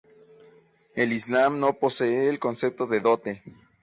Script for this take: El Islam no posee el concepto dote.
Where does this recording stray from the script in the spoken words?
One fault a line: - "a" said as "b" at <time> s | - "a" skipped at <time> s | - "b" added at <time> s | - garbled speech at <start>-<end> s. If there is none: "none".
- "de" added at 2.9 s